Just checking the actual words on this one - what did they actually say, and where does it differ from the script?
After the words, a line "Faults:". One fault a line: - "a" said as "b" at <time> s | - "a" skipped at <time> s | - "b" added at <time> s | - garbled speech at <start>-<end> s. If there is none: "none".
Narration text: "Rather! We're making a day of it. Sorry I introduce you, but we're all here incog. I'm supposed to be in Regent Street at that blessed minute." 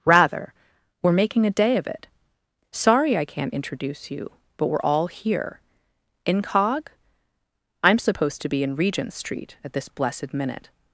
"Rather! We're making a day of it. Sorry I can't introduce you, but we're all here incog. I'm supposed to be in Regent Street at this blessed minute."
Faults:
- "can't" added at 3.3 s
- "that" said as "this" at 9.7 s